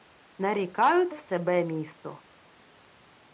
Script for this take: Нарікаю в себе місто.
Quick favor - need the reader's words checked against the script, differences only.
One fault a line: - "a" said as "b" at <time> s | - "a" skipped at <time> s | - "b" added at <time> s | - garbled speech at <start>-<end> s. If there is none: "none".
none